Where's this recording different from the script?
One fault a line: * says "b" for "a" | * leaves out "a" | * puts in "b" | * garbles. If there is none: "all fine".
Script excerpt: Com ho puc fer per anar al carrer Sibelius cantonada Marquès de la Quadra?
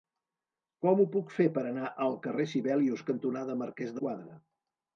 * leaves out "de"